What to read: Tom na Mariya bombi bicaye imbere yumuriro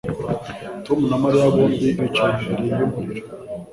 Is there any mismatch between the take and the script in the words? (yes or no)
no